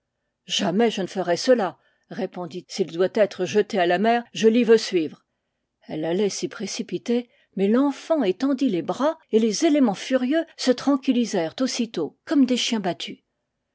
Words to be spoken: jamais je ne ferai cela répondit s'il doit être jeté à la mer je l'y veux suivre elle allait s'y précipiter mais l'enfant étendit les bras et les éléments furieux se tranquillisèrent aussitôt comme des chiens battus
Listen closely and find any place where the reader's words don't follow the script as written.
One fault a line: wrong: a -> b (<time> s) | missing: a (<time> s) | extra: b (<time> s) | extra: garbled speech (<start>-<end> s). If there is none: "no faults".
no faults